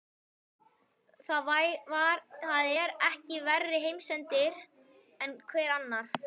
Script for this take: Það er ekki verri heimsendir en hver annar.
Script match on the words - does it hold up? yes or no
yes